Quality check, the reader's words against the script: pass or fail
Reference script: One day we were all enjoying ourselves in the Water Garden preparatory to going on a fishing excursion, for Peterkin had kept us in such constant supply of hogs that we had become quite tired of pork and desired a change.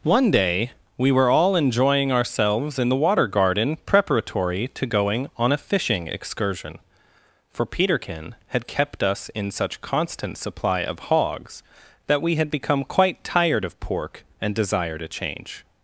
pass